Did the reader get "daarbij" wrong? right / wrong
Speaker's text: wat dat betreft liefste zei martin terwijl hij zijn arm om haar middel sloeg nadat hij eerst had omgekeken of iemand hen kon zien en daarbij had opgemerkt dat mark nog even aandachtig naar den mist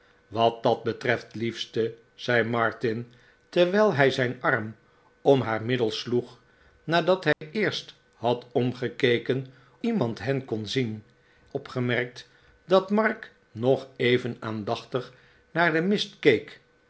wrong